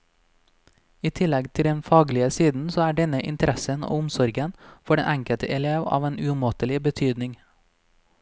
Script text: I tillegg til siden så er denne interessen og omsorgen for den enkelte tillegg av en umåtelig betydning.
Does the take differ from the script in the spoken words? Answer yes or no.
yes